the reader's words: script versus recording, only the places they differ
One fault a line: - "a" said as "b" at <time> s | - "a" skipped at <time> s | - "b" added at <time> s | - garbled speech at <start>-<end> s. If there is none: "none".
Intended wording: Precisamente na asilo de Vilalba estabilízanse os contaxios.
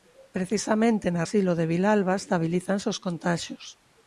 none